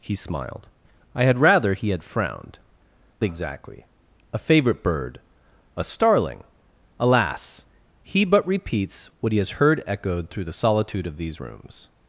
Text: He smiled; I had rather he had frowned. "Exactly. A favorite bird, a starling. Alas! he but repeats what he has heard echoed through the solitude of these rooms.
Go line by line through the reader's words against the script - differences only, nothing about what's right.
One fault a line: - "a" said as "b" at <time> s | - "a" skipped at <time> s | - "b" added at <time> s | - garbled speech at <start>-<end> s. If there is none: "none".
none